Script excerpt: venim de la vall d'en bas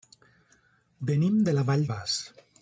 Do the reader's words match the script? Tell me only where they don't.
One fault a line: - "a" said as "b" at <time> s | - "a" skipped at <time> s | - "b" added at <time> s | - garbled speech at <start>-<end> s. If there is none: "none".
- "d'en" skipped at 1.9 s